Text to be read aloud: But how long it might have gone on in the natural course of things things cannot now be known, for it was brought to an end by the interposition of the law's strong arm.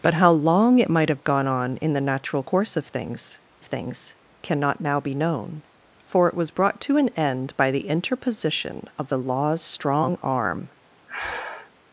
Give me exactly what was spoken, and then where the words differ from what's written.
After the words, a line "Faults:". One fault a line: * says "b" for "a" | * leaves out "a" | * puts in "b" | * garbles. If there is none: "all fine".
But how long it might have gone on in the natural course of things things cannot now be known, for it was brought to an end by the interposition of the law's strong arm.
Faults:
all fine